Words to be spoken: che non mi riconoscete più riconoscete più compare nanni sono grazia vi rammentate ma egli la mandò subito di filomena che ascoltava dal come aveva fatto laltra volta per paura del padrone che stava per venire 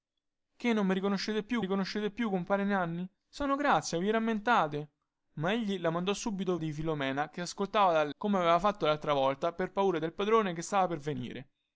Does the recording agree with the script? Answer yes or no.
yes